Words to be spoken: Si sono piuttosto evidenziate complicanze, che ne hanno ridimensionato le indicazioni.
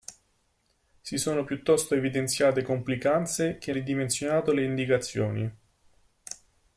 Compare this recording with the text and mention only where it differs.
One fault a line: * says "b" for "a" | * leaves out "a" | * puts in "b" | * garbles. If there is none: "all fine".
* leaves out "ne hanno"